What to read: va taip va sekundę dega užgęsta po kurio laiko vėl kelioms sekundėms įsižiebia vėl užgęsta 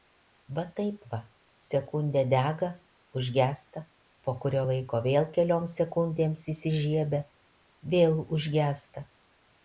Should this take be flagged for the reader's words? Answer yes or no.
no